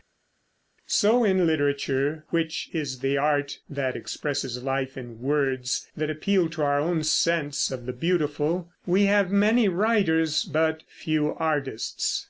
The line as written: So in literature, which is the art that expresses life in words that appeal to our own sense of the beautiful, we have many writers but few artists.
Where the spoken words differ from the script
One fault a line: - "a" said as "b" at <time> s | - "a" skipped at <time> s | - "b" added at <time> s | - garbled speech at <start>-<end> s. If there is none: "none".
none